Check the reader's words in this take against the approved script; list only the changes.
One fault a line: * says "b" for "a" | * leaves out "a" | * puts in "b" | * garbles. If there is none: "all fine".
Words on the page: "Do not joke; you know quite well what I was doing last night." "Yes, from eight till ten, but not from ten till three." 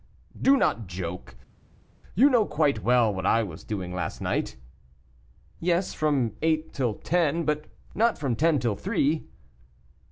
all fine